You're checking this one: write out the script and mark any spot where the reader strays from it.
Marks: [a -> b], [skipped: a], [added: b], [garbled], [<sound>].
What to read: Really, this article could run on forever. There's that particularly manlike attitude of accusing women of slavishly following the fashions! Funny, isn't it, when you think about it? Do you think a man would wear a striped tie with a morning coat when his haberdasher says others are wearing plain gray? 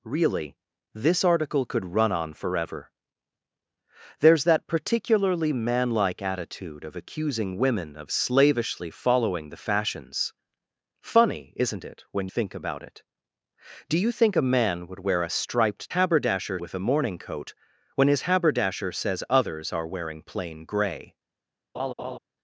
Really, this article could run on forever. There's that particularly manlike attitude of accusing women of slavishly following the fashions! Funny, isn't it, when [skipped: you] think about it? Do you think a man would wear a striped [tie -> haberdasher] with a morning coat when his haberdasher says others are wearing plain gray? [laugh]